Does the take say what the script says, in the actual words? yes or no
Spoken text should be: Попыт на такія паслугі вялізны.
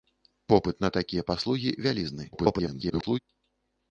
no